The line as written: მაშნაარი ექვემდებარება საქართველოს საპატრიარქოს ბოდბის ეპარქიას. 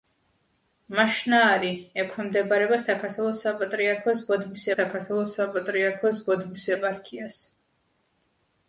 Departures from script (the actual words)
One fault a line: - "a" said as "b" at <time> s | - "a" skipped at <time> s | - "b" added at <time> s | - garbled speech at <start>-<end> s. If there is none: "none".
- "საქართველოს საპატრიარქოს ბოდბის" added at 4.8 s